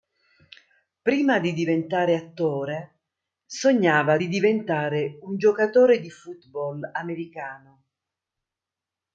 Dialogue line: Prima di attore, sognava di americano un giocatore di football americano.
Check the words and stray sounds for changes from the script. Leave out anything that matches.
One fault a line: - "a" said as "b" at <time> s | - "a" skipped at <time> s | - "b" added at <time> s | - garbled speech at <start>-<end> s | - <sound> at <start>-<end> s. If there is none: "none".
- "diventare" added at 1.5 s
- "americano" said as "diventare" at 4.3 s